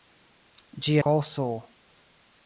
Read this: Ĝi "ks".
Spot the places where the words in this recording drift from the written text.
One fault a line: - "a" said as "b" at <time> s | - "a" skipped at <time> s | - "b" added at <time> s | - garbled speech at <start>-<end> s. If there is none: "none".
none